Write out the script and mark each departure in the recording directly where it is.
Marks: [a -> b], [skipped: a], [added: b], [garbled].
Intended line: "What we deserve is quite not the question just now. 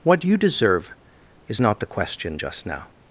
"What [we -> you] deserve is [skipped: quite] not the question just now.